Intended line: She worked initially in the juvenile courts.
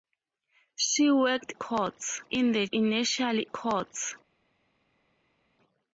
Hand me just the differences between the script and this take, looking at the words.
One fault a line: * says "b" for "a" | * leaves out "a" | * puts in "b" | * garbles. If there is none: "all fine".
* says "courts" for "initially"
* says "initially" for "juvenile"